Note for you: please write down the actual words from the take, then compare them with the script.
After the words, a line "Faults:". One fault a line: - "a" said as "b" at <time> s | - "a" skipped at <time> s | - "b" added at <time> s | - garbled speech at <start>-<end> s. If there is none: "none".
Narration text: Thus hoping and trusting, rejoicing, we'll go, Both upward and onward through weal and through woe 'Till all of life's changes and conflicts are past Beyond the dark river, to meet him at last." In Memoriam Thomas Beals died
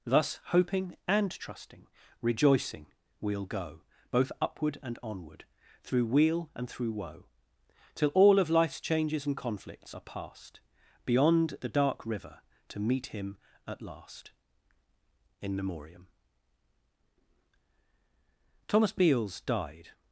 Thus hoping and trusting, rejoicing, we'll go, Both upward and onward through weal and through woe 'Till all of life's changes and conflicts are past Beyond the dark river, to meet him at last." In Memoriam Thomas Beals died
Faults:
none